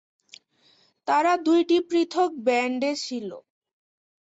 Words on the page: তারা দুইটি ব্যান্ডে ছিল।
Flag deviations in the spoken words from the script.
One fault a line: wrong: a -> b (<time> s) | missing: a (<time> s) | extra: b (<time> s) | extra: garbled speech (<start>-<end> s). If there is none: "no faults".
extra: পৃথক (1.9 s)